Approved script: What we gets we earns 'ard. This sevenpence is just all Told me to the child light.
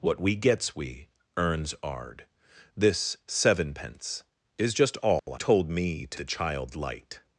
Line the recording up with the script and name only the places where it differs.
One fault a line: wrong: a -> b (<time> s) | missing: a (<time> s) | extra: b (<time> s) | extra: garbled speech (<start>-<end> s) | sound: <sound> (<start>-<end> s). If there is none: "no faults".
sound: dropout (5.2-5.3 s)